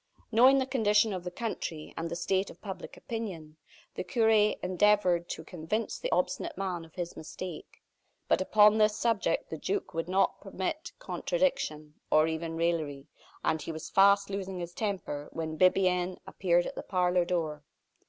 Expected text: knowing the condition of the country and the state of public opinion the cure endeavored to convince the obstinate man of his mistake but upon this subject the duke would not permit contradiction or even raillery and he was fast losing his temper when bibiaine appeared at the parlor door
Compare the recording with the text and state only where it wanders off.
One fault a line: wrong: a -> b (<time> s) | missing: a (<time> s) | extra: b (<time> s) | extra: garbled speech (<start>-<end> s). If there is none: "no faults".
no faults